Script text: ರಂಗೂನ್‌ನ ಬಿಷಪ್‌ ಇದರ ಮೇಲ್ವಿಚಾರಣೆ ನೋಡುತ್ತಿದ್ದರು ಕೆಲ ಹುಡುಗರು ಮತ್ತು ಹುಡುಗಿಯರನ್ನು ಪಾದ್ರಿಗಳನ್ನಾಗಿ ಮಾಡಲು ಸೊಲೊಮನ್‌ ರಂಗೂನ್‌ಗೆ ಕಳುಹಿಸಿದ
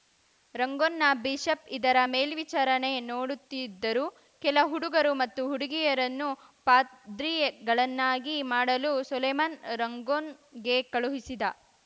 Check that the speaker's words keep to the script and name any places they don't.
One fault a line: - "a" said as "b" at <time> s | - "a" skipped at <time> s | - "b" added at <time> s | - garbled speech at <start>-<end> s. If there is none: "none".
none